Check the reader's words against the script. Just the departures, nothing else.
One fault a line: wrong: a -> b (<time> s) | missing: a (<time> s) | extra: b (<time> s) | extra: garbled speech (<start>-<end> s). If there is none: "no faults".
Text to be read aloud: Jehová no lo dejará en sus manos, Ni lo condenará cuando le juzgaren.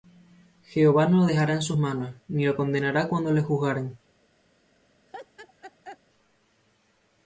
no faults